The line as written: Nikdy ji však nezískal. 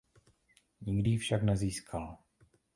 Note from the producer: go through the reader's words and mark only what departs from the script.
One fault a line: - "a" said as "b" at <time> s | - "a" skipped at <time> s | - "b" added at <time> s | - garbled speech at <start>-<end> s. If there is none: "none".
none